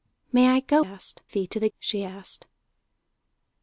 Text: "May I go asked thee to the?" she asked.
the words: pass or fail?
pass